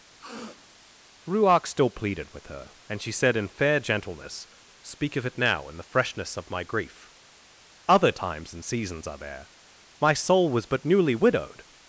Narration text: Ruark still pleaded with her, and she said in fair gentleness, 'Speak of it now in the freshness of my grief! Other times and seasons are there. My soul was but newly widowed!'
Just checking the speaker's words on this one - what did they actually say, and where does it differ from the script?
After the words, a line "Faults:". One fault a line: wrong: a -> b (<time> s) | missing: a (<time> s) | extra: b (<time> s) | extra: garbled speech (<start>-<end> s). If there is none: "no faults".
Ruark still pleaded with her, and she said in fair gentleness, 'Speak of it now in the freshness of my grief! Other times and seasons are there. My soul was but newly widowed!'
Faults:
no faults